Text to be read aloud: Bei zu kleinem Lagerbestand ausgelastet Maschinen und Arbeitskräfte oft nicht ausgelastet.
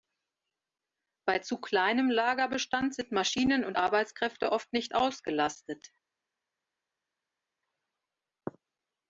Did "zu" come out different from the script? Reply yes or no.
no